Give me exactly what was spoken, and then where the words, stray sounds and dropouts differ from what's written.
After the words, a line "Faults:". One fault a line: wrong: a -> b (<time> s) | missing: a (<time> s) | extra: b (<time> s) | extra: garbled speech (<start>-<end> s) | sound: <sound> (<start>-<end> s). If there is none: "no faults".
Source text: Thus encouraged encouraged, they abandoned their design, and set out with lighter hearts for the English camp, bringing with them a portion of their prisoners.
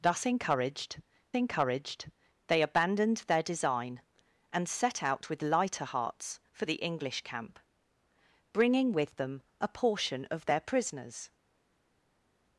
Thus encouraged encouraged, they abandoned their design, and set out with lighter hearts for the English camp, bringing with them a portion of their prisoners.
Faults:
no faults